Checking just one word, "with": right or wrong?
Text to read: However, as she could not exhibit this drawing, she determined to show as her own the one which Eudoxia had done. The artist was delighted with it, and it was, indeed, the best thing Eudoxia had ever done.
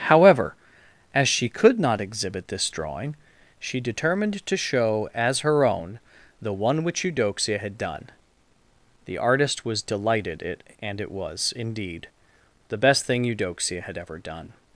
wrong